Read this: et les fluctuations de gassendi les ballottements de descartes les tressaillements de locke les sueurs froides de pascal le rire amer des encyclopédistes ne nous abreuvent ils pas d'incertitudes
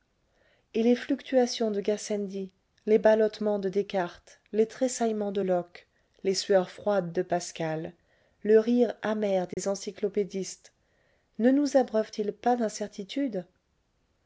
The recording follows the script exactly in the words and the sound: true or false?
false